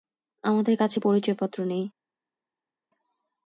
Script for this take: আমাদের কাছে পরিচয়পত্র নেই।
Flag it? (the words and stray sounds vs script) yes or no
no